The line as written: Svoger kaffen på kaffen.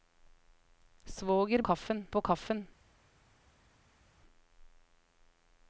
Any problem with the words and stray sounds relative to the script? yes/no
no